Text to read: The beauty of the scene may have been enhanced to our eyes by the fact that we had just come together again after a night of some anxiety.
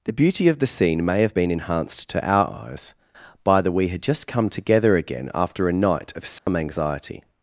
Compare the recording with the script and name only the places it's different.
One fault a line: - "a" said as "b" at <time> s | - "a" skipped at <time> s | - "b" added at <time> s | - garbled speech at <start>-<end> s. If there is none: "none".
- "fact that" skipped at 3.7 s